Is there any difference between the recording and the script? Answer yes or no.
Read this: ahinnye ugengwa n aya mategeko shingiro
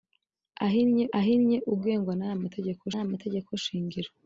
yes